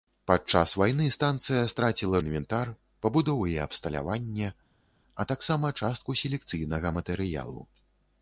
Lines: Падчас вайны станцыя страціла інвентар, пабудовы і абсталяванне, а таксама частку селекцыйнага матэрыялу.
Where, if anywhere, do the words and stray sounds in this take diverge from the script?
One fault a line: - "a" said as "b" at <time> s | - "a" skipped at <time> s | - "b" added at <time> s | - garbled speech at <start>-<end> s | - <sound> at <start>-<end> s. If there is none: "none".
none